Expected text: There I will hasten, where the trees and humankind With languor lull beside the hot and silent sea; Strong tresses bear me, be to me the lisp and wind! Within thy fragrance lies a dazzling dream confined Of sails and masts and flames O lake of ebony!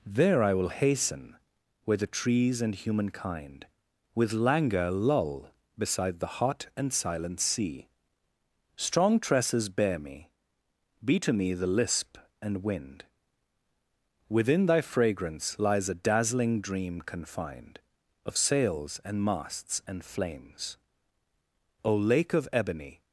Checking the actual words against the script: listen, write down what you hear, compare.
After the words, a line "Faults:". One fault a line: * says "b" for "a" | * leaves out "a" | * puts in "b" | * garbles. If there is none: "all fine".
There I will hasten, where the trees and humankind With languor lull beside the hot and silent sea; Strong tresses bear me, be to me the lisp and wind! Within thy fragrance lies a dazzling dream confined Of sails and masts and flames O lake of ebony!
Faults:
all fine